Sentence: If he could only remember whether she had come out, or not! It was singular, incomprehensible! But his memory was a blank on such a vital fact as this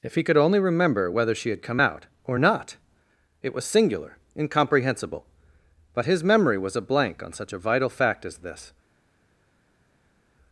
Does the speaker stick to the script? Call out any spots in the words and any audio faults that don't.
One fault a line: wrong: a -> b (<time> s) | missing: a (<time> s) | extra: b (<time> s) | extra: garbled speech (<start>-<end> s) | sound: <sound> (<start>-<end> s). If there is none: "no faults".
no faults